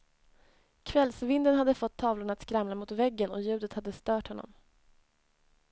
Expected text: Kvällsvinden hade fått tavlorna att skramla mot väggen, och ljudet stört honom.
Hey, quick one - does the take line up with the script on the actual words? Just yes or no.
no